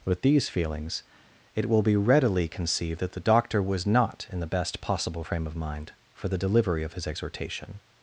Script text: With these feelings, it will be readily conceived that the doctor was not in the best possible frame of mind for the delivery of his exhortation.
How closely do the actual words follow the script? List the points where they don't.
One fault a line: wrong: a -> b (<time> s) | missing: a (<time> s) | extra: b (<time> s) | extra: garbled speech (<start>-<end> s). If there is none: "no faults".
no faults